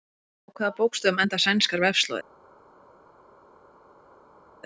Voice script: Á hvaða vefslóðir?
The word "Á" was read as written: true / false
true